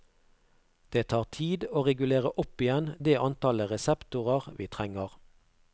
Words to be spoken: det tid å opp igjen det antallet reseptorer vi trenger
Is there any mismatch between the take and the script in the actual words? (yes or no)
yes